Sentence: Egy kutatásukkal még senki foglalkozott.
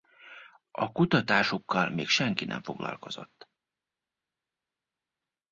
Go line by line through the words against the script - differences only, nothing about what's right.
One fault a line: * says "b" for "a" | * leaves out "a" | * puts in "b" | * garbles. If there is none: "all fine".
* says "A" for "Egy"
* puts in "nem"